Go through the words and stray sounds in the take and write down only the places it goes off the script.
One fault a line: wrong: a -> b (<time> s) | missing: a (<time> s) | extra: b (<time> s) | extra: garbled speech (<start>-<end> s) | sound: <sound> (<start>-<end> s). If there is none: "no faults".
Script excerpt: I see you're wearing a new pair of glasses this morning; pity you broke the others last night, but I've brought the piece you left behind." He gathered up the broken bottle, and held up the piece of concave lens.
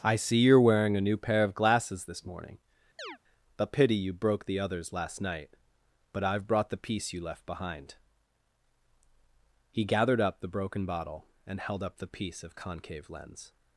sound: chirp (3.0-3.2 s)
extra: a (3.6 s)